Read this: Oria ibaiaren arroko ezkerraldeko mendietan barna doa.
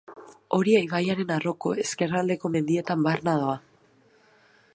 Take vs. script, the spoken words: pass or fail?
pass